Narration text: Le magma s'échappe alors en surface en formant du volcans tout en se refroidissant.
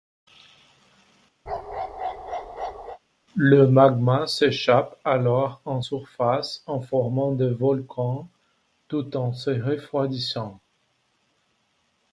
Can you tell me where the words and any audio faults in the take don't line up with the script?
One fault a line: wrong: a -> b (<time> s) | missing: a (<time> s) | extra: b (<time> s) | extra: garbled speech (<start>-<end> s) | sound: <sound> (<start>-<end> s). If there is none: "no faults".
sound: bark (1.5-3.0 s)
wrong: du -> des (7.3 s)